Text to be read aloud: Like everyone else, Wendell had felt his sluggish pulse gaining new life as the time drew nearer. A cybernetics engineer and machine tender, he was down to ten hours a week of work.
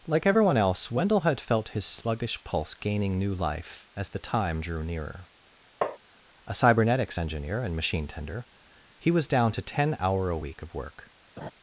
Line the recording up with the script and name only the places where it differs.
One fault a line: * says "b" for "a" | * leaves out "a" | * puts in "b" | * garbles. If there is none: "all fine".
* says "hour" for "hours"